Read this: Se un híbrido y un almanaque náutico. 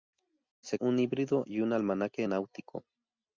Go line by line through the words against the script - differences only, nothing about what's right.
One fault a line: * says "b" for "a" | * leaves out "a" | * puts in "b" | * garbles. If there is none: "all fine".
all fine